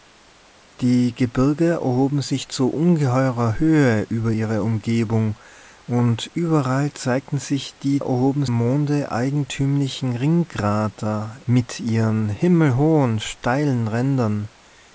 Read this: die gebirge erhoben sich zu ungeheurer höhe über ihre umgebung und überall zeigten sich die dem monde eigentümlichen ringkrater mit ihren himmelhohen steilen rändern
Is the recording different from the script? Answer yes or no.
yes